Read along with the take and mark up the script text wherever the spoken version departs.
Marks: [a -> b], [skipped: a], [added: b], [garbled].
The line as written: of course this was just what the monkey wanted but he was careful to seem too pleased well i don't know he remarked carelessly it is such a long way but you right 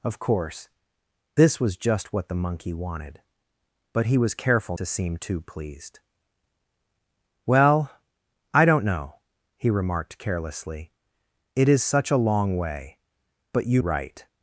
of course this was just what the monkey wanted but he was careful to seem too pleased well i don't know he remarked carelessly it is such a long way but you right